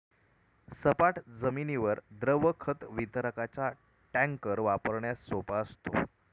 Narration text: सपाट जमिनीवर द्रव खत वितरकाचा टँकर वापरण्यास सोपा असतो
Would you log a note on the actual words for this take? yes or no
no